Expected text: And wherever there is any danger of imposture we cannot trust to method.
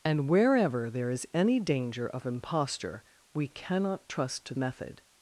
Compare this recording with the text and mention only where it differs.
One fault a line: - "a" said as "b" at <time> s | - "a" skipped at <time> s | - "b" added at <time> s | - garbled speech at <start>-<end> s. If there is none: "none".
none